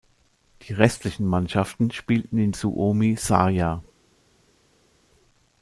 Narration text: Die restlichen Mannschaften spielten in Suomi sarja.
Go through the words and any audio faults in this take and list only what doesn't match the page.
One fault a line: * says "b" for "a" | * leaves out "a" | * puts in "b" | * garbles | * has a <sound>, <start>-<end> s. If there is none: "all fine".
all fine